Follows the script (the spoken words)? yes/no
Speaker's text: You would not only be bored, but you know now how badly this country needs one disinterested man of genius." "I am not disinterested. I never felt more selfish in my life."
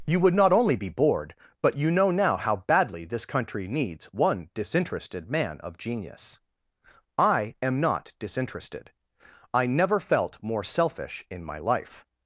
yes